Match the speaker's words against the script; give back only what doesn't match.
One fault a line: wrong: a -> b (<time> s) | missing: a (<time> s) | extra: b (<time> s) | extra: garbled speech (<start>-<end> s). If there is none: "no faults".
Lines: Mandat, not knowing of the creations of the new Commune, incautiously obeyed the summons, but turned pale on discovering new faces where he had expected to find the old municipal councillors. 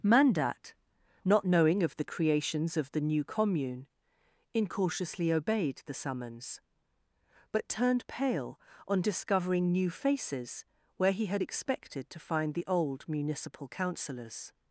no faults